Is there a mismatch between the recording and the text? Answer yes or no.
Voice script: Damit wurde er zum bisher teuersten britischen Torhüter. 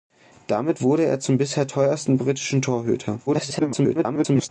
yes